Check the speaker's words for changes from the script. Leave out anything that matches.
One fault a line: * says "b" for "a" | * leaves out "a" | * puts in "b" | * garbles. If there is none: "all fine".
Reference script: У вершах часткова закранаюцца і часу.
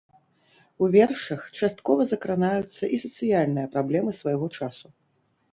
* puts in "сацыяльныя праблемы свайго"